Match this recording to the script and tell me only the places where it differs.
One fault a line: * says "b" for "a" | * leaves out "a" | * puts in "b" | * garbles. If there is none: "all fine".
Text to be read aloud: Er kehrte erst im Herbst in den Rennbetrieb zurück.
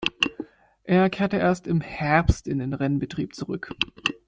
all fine